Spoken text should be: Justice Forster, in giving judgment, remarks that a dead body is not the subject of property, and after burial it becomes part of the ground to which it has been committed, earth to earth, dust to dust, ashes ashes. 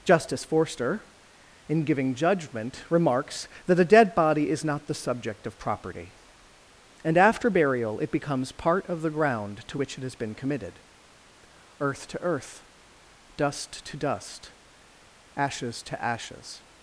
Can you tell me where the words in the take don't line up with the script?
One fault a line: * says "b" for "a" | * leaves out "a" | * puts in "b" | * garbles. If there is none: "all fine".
* puts in "to"